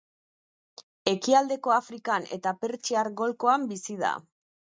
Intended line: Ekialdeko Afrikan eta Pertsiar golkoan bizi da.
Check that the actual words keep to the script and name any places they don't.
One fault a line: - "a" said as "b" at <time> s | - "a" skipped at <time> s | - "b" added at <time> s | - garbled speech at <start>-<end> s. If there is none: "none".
none